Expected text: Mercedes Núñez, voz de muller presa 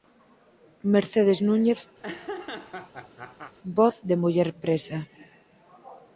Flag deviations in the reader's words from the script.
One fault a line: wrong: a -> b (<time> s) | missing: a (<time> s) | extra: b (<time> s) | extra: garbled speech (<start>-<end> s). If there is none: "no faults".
no faults